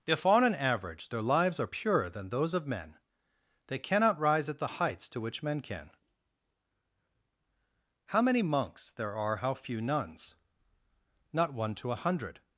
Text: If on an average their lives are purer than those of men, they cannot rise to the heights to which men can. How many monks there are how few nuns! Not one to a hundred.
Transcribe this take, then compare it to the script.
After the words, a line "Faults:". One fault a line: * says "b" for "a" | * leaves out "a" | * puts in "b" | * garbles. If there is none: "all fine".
If on an average their lives are purer than those of men, they cannot rise at the heights to which men can. How many monks there are how few nuns! Not one to a hundred.
Faults:
* says "at" for "to"